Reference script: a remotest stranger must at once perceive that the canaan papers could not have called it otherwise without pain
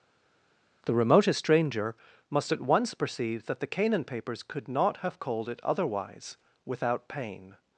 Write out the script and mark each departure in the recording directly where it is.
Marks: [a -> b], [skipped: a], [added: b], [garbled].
[a -> the] remotest stranger must at once perceive that the canaan papers could not have called it otherwise without pain